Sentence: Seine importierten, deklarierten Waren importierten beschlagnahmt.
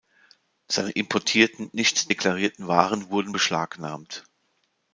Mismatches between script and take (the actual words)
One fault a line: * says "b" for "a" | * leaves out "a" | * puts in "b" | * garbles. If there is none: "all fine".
* puts in "nicht"
* says "wurden" for "importierten"